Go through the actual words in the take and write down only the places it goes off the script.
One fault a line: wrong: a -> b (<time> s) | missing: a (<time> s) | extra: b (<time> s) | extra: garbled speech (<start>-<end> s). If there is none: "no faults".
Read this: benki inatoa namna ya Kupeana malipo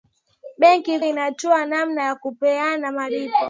no faults